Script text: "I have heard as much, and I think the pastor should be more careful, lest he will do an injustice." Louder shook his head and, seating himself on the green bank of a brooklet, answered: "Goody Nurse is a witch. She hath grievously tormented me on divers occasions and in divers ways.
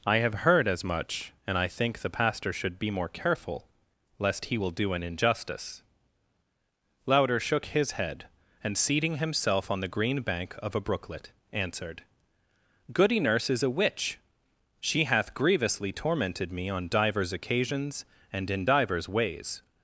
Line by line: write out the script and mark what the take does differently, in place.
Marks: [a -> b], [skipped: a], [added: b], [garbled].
"I have heard as much, and I think the pastor should be more careful, lest he will do an injustice." Louder shook his head and, seating himself on the green bank of a brooklet, answered: "Goody Nurse is a witch. She hath grievously tormented me on divers occasions and in divers ways.